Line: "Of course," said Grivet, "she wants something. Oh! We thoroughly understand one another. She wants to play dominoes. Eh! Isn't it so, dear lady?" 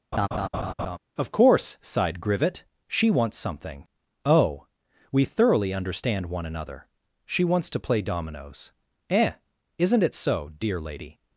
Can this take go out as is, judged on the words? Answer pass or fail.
fail